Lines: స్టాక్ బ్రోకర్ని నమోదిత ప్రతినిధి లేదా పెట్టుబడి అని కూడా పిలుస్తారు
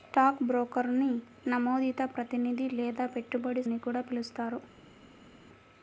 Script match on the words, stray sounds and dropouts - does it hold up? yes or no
yes